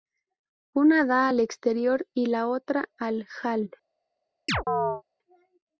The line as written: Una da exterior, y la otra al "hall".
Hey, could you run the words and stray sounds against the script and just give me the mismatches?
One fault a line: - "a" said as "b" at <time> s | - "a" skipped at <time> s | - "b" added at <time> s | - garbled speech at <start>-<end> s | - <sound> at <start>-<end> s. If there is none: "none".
- "al" added at 1.3 s
- chirp at 4.5-5.0 s